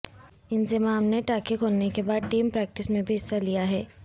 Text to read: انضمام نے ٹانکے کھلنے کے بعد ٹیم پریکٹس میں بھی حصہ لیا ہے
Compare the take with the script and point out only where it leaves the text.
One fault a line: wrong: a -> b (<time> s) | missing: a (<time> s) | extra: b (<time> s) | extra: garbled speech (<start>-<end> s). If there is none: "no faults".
no faults